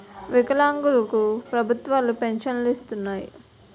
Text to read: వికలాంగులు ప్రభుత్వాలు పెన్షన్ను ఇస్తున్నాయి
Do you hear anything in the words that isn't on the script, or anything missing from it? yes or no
yes